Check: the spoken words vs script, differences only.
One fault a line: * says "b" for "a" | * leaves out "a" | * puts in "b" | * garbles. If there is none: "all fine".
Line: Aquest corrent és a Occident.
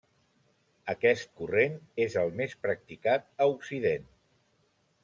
* puts in "el més practicat"